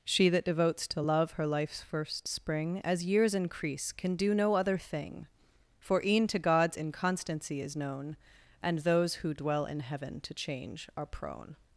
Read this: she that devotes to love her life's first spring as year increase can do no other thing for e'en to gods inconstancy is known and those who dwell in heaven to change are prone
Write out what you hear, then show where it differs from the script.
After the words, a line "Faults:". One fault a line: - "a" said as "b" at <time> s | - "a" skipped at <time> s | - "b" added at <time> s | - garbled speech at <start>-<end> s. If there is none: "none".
she that devotes to love her life's first spring as years increase can do no other thing for e'en to gods inconstancy is known and those who dwell in heaven to change are prone
Faults:
- "year" said as "years" at 3.0 s